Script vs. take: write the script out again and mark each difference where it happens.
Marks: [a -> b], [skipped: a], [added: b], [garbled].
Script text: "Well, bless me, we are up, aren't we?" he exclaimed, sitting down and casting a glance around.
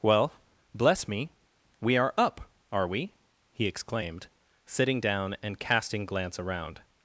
"Well, bless me, we are up, [aren't -> are] we?" he exclaimed, sitting down and casting [skipped: a] glance around.